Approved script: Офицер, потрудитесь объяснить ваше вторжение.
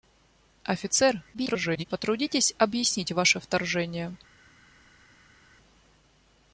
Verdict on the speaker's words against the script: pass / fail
fail